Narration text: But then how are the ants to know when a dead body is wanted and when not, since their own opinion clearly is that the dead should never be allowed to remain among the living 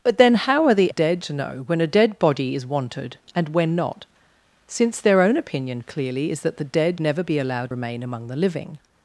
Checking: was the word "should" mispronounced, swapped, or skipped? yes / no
yes